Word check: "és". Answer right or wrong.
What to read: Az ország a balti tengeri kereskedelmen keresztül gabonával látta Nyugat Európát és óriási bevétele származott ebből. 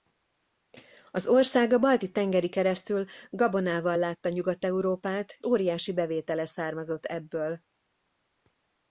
wrong